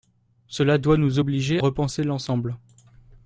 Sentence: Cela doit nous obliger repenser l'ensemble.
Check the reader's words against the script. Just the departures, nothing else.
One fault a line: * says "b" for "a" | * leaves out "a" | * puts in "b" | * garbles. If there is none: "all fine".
all fine